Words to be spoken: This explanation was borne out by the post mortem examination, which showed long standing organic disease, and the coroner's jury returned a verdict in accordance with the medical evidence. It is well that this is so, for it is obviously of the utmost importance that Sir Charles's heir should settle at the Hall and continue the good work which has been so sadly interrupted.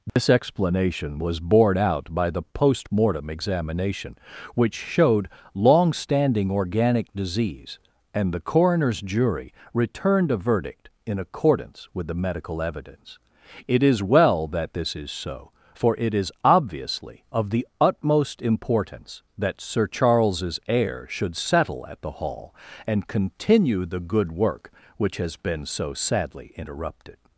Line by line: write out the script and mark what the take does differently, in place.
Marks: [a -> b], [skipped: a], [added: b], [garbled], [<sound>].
This [dropout] explanation was borne out by the post mortem examination, which showed long standing organic disease, and the coroner's jury returned a verdict in accordance with the medical evidence. It is well that this is so, for it is obviously of the utmost importance that Sir Charles's heir should settle at the Hall and continue the good work which has been so sadly interrupted.